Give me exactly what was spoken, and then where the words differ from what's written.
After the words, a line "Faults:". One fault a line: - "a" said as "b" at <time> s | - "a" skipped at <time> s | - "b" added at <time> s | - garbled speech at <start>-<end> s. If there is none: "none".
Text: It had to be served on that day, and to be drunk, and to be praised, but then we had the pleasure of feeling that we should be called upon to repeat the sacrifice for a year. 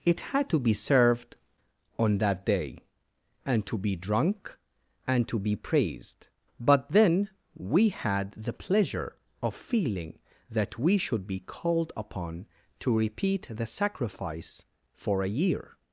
It had to be served on that day, and to be drunk, and to be praised, but then we had the pleasure of feeling that we should be called upon to repeat the sacrifice for a year.
Faults:
none